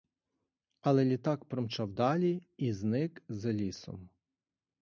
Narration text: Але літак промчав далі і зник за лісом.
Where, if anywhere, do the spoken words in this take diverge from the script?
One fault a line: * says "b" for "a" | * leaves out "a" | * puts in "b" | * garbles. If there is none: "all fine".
all fine